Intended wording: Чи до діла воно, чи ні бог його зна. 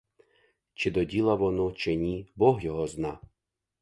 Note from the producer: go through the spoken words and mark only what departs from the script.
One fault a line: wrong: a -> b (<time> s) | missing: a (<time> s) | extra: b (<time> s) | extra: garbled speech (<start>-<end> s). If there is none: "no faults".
no faults